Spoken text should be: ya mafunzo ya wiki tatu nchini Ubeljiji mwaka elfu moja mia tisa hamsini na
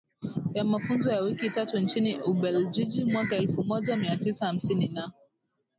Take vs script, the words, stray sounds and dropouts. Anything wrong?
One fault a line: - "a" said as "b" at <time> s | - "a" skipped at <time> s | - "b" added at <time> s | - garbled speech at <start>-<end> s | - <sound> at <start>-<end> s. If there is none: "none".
none